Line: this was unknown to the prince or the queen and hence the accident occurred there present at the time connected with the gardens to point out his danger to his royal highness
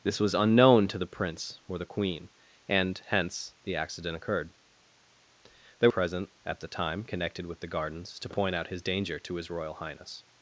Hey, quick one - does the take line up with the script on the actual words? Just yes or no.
yes